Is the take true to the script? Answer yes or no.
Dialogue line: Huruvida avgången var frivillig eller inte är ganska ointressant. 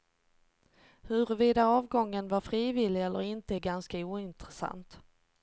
yes